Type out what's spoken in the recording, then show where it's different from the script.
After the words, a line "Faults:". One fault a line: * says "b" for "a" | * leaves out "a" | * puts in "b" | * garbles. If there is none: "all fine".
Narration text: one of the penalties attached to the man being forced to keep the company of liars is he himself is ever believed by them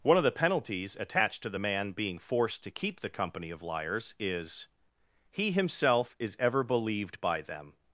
one of the penalties attached to the man being forced to keep the company of liars is he himself is ever believed by them
Faults:
all fine